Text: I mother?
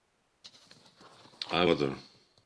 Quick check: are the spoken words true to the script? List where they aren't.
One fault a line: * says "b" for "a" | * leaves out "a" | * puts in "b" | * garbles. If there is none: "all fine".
all fine